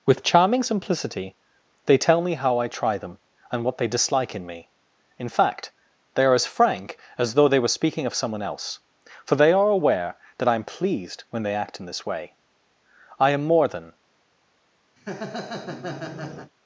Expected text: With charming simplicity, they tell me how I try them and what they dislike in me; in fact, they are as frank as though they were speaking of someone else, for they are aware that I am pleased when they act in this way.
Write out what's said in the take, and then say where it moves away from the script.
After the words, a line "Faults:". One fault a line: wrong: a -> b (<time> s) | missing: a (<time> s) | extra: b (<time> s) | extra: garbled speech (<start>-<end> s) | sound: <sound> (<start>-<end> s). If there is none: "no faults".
With charming simplicity, they tell me how I try them and what they dislike in me; in fact, they are as frank as though they were speaking of someone else, for they are aware that I am pleased when they act in this way. I am more than
Faults:
extra: I am more than (13.2 s)
sound: laugh (15.0-16.5 s)